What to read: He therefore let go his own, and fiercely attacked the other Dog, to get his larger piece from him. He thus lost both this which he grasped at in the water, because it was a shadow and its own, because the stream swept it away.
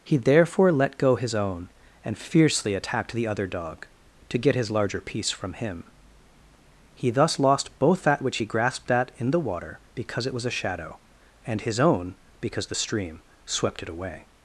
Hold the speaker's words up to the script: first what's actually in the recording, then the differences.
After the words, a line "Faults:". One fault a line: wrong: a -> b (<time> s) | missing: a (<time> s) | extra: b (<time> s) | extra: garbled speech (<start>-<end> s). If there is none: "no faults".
He therefore let go his own, and fiercely attacked the other Dog, to get his larger piece from him. He thus lost both that which he grasped at in the water, because it was a shadow and his own, because the stream swept it away.
Faults:
wrong: this -> that (8.0 s)
wrong: its -> his (11.6 s)